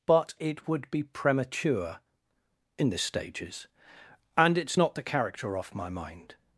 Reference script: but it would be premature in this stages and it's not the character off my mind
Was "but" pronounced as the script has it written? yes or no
yes